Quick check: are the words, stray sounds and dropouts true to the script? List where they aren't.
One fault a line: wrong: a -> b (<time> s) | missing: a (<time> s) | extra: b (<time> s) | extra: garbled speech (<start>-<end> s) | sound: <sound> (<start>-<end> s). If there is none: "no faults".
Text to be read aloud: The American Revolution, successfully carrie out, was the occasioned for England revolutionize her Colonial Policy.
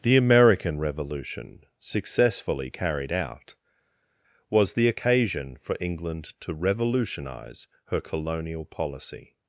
wrong: carrie -> carried (2.7 s)
wrong: occasioned -> occasion (4.9 s)
extra: to (6.4 s)